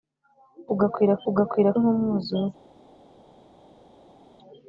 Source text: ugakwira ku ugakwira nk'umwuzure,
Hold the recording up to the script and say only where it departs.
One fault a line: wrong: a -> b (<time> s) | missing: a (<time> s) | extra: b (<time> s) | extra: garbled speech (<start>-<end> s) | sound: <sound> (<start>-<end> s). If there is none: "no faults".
no faults